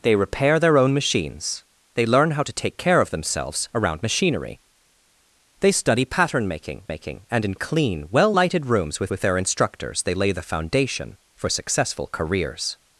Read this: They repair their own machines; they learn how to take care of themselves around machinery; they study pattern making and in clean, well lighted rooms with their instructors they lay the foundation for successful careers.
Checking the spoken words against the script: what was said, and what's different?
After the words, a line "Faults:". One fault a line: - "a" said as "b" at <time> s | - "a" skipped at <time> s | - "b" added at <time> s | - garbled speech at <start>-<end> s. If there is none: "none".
They repair their own machines; they learn how to take care of themselves around machinery; they study pattern making making and in clean, well lighted rooms with with their instructors they lay the foundation for successful careers.
Faults:
- "making" added at 6.9 s
- "with" added at 9.1 s